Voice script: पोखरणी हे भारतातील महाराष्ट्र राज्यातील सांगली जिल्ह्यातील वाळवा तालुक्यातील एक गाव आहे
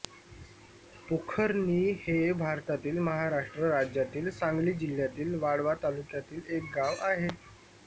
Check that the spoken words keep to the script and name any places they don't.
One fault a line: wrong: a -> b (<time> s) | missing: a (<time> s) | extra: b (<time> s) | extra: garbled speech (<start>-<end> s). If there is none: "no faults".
no faults